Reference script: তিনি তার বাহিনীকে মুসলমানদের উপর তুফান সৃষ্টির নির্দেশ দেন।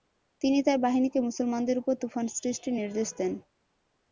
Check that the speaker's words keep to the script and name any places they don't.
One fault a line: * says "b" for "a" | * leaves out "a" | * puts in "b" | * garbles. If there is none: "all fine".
all fine